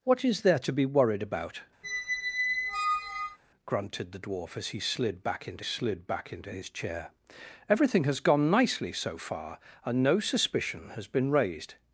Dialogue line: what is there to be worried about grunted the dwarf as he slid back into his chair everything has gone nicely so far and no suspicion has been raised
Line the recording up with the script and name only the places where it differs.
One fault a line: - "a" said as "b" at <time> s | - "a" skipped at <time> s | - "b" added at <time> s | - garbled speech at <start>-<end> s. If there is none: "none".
- "slid back into" added at 5.6 s